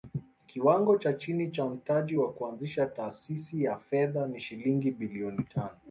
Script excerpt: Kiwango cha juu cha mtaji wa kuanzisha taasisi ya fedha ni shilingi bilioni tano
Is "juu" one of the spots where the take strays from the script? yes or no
yes